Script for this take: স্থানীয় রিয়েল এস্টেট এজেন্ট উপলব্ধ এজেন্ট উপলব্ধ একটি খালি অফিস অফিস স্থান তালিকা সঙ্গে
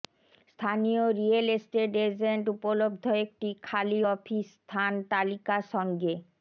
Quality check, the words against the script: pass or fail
fail